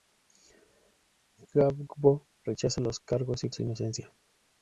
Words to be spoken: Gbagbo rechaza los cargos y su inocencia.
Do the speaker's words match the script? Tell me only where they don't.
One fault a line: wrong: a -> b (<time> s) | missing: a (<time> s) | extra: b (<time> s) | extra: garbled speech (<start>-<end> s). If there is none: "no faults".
no faults